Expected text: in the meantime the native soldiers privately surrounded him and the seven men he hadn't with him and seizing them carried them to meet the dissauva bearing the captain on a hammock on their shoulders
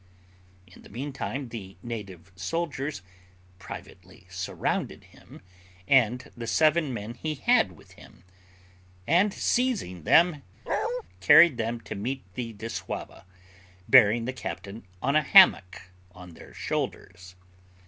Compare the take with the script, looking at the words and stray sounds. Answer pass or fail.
fail